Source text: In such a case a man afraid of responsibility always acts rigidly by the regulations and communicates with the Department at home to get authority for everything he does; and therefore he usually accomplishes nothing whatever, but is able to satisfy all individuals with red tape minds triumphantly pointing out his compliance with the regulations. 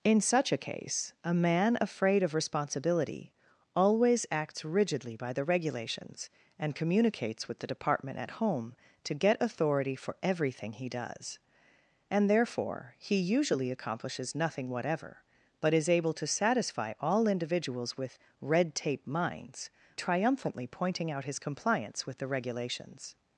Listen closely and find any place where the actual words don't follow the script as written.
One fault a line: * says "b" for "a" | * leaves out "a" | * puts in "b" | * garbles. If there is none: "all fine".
all fine